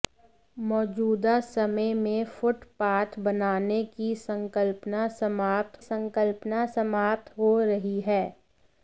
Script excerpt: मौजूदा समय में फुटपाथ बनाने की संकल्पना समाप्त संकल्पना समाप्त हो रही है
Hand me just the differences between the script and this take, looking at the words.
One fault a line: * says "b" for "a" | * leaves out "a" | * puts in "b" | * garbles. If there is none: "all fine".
all fine